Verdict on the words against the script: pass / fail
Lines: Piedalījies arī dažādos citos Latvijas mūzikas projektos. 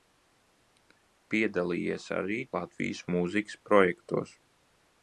fail